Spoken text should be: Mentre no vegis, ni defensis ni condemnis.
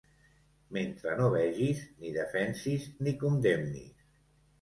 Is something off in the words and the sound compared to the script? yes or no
no